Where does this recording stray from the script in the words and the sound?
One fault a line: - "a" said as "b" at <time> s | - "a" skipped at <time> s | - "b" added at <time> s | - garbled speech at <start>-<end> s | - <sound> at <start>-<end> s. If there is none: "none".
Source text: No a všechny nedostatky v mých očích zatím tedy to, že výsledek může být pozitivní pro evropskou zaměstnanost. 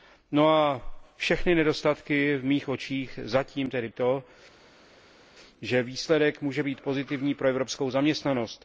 none